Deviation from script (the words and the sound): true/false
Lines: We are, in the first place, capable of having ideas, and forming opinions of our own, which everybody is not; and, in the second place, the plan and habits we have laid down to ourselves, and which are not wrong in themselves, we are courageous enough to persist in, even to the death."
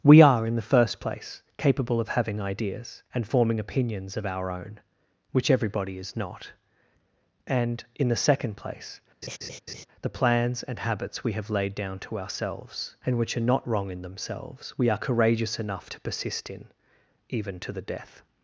true